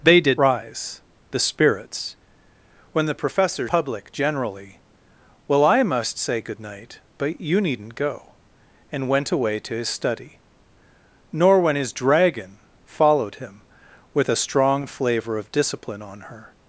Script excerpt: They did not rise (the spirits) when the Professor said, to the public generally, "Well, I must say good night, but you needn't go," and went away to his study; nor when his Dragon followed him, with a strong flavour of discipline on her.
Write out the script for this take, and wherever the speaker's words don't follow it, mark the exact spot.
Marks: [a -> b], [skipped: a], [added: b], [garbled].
They did [skipped: not] rise (the spirits) when the Professor [skipped: said, to the] public generally, "Well, I must say good night, but you needn't go," and went away to his study; nor when his Dragon followed him, with a strong flavour of discipline on her.